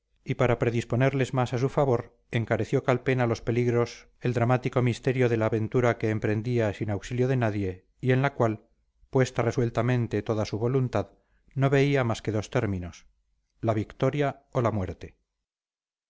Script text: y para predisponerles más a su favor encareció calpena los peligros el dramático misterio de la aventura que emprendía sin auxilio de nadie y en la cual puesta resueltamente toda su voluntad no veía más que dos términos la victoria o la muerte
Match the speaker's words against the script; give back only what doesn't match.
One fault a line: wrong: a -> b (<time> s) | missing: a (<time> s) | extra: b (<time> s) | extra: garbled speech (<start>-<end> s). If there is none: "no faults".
no faults